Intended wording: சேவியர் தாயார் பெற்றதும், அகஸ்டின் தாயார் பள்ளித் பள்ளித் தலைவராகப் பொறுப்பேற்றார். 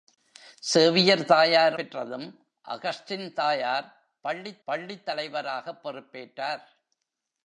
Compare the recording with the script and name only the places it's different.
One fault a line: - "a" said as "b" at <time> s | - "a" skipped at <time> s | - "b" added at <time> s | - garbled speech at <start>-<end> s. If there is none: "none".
none